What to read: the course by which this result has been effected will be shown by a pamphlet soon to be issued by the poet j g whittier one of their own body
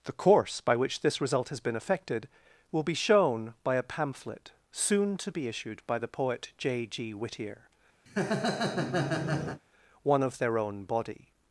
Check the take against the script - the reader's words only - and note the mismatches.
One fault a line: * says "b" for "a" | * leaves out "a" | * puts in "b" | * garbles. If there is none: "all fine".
all fine